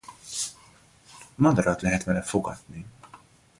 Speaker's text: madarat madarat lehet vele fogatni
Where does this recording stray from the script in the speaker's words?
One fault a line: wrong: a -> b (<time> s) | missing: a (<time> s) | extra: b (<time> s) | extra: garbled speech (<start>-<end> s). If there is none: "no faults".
missing: madarat (1.8 s)